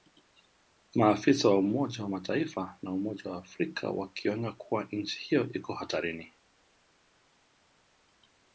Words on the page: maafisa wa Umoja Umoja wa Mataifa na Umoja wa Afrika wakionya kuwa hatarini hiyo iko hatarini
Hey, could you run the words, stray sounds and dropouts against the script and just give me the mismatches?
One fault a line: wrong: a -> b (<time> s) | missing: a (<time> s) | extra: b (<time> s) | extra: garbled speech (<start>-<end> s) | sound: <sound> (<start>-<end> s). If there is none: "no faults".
missing: Umoja (2.0 s)
wrong: hatarini -> nchi (4.9 s)